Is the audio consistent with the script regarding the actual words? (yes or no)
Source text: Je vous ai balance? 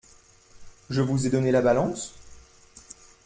no